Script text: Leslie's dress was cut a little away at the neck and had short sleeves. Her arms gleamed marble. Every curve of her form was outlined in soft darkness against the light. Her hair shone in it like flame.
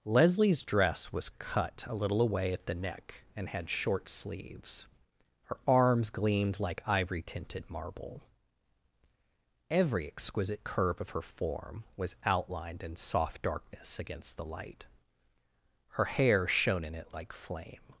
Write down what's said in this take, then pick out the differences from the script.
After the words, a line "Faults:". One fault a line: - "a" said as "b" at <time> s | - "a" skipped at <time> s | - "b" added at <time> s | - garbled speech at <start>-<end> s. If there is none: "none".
Leslie's dress was cut a little away at the neck and had short sleeves. Her arms gleamed like ivory tinted marble. Every exquisite curve of her form was outlined in soft darkness against the light. Her hair shone in it like flame.
Faults:
- "like ivory tinted" added at 6.6 s
- "exquisite" added at 10.1 s